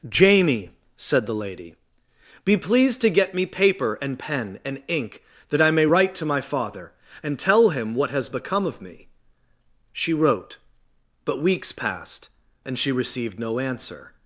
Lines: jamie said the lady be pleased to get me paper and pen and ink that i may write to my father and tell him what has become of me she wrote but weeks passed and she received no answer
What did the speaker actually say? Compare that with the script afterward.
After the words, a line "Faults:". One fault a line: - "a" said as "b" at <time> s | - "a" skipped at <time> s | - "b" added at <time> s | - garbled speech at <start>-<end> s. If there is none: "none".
jamie said the lady be pleased to get me paper and pen and ink that i may write to my father and tell him what has become of me she wrote but weeks passed and she received no answer
Faults:
none